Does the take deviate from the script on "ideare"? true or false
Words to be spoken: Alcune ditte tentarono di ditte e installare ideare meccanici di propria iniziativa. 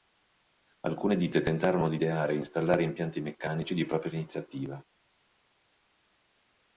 true